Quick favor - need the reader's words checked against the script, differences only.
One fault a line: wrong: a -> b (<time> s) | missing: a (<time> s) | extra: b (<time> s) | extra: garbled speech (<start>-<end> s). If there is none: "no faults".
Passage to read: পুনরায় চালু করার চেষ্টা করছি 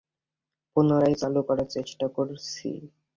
no faults